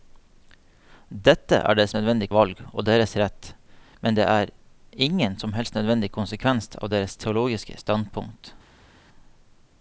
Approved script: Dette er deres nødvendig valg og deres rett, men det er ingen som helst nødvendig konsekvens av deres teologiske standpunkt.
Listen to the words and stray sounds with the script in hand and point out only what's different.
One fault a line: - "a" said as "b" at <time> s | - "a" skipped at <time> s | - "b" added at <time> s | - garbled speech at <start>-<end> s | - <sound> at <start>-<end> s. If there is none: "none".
none